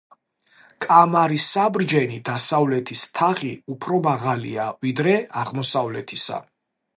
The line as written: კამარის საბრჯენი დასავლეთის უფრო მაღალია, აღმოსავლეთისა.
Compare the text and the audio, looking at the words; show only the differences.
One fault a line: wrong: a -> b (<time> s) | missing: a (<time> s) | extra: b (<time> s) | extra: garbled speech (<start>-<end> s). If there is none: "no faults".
extra: თაღი (3.2 s)
extra: ვიდრე (4.9 s)